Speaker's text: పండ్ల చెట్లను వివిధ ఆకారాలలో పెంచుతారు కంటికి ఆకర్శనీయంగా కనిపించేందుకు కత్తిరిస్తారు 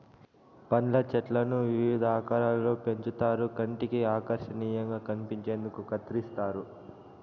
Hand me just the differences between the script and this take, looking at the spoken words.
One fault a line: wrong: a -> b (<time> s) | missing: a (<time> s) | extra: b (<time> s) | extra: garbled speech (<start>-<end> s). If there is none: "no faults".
no faults